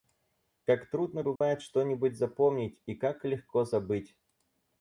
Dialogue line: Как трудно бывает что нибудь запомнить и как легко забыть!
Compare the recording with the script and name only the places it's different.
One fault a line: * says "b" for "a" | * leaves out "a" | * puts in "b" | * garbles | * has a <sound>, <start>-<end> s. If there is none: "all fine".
* has a dropout, 1.4-1.4 s